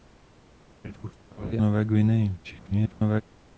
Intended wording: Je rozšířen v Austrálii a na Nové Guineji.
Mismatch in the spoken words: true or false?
true